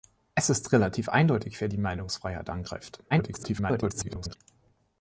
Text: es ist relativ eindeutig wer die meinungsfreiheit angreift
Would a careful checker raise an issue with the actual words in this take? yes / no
yes